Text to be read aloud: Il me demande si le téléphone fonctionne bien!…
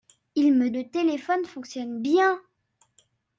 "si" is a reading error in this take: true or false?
true